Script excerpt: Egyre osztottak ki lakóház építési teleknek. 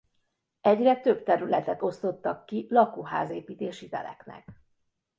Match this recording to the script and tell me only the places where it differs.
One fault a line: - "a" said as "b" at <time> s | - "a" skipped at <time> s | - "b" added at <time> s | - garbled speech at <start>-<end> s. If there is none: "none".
- "több területet" added at 1.0 s